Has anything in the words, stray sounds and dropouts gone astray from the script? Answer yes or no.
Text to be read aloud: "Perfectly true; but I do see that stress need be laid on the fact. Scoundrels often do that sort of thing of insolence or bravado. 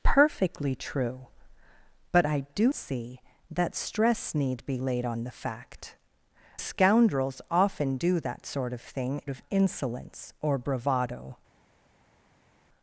no